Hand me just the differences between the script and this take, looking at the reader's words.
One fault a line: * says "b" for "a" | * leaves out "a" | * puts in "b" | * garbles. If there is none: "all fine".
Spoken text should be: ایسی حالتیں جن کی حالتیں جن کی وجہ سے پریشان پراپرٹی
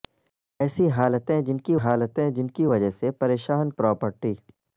all fine